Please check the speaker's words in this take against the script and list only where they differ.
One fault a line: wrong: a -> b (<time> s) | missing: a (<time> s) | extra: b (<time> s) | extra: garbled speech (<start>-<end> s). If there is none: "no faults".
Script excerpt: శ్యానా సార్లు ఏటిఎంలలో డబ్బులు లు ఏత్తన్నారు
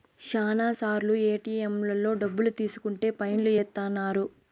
extra: తీసుకుంటే ఫైన్ (2.6 s)